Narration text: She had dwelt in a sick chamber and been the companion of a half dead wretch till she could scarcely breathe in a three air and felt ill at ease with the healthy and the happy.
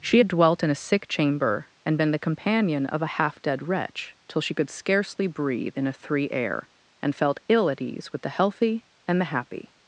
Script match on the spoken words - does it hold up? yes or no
yes